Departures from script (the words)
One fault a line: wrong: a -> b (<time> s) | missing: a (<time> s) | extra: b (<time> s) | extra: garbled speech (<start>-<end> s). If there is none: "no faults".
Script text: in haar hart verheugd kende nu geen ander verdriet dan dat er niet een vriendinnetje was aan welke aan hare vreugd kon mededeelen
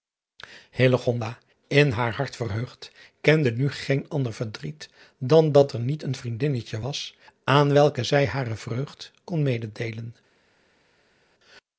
wrong: aan -> zij (8.0 s)